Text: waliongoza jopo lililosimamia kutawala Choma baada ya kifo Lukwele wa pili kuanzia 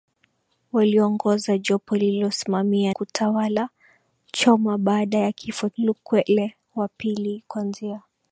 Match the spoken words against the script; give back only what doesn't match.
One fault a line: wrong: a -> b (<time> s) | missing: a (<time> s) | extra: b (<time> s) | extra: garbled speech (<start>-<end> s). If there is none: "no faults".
no faults